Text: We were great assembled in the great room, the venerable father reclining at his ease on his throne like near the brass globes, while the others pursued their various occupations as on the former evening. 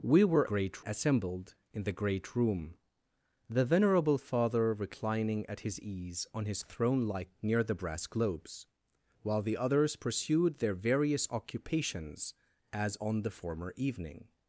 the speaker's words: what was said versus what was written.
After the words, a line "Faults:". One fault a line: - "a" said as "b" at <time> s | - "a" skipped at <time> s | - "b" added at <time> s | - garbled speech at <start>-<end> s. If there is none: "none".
We were great assembled in the great room, the venerable father reclining at his ease on his throne like near the brass globes, while the others pursued their various occupations as on the former evening.
Faults:
none